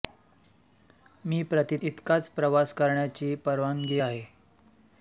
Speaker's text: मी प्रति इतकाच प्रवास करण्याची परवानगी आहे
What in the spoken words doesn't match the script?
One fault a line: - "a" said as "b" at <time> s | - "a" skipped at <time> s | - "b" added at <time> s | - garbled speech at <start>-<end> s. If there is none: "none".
none